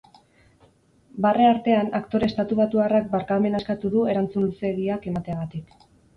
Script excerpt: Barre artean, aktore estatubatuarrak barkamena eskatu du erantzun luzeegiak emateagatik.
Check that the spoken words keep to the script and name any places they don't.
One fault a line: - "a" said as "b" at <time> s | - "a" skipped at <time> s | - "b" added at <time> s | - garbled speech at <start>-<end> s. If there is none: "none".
none